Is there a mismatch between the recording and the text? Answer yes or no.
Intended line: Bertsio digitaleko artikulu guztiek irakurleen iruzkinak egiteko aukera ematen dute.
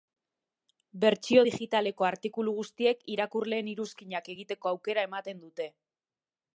no